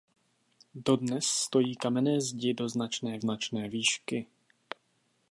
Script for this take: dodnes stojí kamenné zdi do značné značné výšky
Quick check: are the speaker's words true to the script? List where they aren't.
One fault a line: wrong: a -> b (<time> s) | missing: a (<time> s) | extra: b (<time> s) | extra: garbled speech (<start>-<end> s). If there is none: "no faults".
no faults